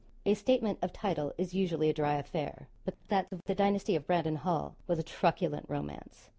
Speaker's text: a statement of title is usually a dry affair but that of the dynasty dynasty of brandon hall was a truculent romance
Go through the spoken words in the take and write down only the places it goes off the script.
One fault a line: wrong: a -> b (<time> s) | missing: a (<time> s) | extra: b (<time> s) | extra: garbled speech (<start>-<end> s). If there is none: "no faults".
missing: dynasty (4.0 s)